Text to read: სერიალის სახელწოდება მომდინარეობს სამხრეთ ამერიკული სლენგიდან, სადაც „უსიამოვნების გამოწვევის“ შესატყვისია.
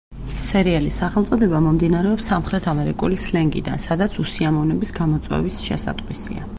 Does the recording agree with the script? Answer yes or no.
yes